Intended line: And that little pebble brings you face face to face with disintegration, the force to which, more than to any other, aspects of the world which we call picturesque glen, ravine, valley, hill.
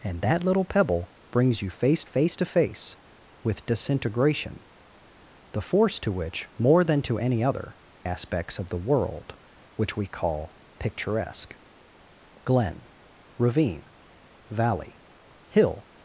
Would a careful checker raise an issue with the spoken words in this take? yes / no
no